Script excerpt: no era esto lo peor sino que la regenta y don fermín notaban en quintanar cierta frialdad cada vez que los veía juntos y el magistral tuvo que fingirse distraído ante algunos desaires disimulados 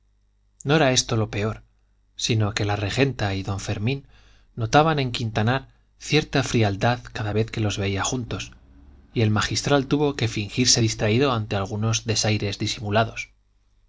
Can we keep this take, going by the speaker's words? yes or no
yes